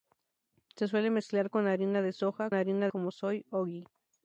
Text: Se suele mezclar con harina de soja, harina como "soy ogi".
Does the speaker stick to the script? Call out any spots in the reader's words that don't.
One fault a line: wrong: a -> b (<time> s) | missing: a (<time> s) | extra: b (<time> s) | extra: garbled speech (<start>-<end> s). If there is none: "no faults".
no faults